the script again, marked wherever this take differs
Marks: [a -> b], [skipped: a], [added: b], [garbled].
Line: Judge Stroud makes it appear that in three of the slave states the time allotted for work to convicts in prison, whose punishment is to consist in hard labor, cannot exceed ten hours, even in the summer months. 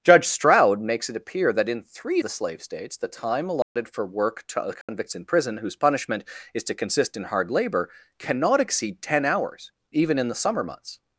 Judge Stroud makes it appear that in three [skipped: of] the slave states the time allotted for work to convicts in prison, whose punishment is to consist in hard labor, cannot exceed ten hours, even in the summer months.